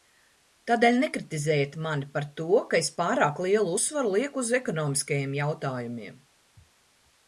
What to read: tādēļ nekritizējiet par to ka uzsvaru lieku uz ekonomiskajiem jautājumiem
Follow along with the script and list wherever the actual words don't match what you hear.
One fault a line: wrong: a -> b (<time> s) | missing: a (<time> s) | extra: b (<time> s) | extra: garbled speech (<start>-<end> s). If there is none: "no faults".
extra: mani (1.9 s)
extra: es pārāk lielu (2.8 s)